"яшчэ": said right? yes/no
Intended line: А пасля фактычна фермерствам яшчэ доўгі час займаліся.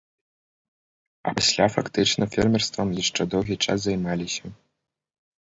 yes